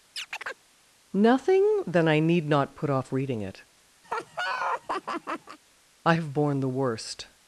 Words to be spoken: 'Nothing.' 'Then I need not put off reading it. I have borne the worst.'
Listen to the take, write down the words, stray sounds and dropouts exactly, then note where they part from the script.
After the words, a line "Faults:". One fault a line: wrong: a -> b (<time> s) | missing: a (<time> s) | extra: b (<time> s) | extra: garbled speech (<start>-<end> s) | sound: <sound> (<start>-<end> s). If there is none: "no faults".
'Nothing.' 'Then I need not put off reading it. I have borne the worst.'
Faults:
sound: chirp (0.2-0.6 s)
sound: laugh (4.0-5.6 s)